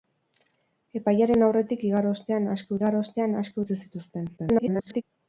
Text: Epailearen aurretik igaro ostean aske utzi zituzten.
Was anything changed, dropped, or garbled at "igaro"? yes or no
no